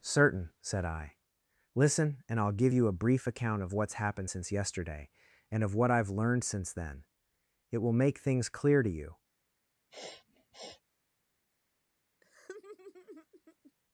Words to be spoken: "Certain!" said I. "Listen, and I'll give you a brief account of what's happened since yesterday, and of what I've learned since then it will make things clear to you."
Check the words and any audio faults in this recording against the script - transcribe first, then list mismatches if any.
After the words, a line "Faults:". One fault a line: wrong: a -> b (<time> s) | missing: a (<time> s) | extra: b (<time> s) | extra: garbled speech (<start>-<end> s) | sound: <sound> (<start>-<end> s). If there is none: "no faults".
"Certain!" said I. "Listen, and I'll give you a brief account of what's happened since yesterday, and of what I've learned since then it will make things clear to you."
Faults:
sound: sniff (9.9-10.8 s)
sound: laugh (12.2-13.7 s)